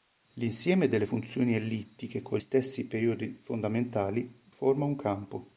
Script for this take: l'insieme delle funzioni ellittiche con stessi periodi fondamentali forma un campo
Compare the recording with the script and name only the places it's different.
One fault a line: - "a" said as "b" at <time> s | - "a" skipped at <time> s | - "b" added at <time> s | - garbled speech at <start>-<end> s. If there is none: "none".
none